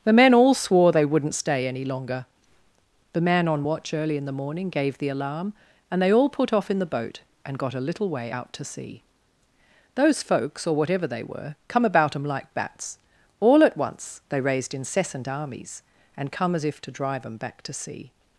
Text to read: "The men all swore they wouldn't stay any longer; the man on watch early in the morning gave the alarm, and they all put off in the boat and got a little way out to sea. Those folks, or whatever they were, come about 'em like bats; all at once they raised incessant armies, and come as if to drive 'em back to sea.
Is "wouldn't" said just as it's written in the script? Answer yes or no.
yes